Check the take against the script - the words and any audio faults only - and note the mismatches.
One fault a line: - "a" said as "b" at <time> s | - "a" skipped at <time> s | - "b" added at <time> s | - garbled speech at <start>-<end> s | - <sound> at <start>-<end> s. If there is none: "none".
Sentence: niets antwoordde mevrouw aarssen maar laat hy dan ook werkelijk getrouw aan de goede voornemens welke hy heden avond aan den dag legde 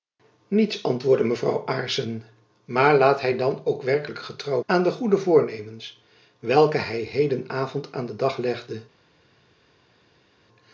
none